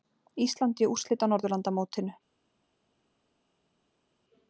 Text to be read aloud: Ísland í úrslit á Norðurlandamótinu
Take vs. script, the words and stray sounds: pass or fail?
pass